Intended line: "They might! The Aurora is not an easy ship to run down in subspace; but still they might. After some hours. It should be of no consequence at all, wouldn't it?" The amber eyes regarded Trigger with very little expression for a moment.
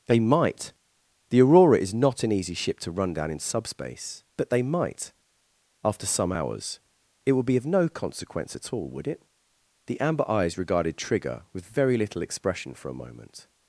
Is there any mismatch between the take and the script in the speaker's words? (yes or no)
yes